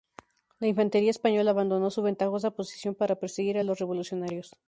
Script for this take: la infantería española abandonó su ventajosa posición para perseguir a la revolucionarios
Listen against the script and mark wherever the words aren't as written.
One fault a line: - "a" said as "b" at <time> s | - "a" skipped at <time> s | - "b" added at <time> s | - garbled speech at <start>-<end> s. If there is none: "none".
- "la" said as "los" at 3.6 s